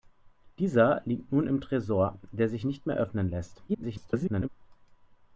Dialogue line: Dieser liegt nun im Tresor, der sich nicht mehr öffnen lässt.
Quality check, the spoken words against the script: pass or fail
fail